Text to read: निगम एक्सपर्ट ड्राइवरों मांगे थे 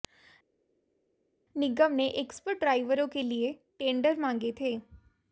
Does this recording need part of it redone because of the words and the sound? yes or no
yes